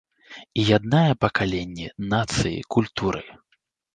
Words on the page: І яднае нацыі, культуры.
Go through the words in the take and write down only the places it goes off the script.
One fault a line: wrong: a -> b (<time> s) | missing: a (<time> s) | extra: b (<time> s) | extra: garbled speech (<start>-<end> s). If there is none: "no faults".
extra: пакаленні (1.2 s)